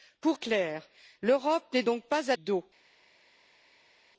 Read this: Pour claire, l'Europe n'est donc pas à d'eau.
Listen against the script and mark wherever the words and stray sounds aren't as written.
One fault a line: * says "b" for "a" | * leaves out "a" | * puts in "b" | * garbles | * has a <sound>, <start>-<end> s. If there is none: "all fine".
all fine